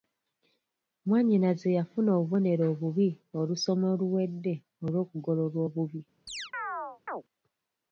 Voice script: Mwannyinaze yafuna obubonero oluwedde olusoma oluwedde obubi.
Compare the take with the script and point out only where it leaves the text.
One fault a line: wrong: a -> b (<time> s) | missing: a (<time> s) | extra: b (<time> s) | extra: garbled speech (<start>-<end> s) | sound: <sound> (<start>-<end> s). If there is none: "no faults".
wrong: oluwedde -> obubi (2.7 s)
extra: olw'okugololwa (4.8 s)
sound: chirp (6.3-7.2 s)